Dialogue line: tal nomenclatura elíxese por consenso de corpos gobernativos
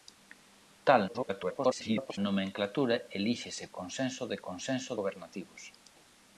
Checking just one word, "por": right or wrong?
wrong